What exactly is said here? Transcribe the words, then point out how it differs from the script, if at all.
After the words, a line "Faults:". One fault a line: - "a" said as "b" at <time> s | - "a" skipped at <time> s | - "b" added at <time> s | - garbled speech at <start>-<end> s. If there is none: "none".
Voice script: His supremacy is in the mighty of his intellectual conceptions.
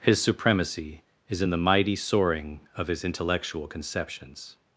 His supremacy is in the mighty soaring of his intellectual conceptions.
Faults:
- "soaring" added at 1.9 s